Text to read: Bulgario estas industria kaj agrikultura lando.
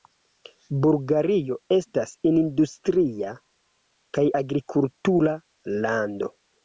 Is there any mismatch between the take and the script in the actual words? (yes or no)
no